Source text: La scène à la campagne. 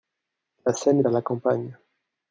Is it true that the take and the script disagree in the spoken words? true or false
false